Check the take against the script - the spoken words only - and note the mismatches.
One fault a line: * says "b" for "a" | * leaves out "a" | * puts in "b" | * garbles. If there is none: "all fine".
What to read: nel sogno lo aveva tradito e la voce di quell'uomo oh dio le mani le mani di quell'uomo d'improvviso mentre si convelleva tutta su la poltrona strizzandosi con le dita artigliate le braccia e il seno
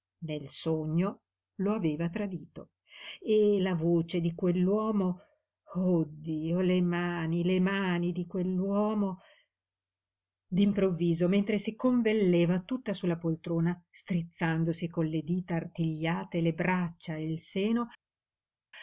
all fine